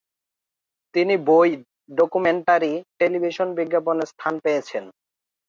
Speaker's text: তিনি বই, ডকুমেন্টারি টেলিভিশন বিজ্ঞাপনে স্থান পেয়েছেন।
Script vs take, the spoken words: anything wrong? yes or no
no